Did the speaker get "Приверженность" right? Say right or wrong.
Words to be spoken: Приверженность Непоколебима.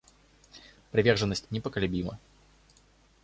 right